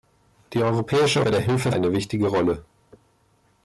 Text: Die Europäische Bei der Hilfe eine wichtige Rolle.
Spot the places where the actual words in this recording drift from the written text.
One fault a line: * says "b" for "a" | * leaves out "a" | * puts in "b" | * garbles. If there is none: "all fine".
all fine